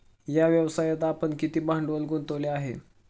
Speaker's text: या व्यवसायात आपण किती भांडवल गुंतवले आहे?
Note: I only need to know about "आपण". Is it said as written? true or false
true